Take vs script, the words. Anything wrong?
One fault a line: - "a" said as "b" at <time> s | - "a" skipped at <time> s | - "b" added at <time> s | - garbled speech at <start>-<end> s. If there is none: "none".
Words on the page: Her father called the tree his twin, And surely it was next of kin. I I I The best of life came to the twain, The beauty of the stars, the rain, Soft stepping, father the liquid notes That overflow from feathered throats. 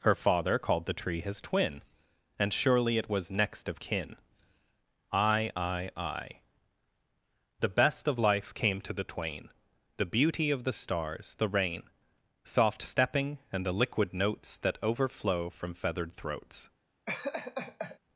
- "father" said as "and" at 13.5 s